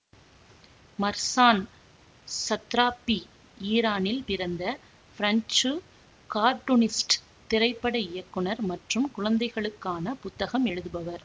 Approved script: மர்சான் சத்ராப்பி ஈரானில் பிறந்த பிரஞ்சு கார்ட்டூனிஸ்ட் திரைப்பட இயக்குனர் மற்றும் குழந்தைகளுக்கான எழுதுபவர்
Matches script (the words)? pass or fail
fail